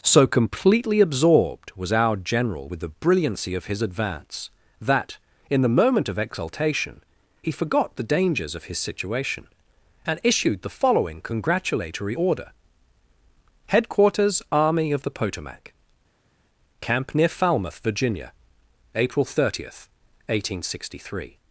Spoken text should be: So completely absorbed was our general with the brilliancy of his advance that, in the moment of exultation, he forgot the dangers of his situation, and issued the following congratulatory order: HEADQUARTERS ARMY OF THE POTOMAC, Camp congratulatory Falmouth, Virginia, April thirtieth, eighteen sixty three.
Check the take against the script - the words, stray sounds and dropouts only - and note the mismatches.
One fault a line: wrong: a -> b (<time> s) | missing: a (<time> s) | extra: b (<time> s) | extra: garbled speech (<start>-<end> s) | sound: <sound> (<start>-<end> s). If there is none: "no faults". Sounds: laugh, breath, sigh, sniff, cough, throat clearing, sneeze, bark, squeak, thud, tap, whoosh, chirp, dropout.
wrong: congratulatory -> near (17.1 s)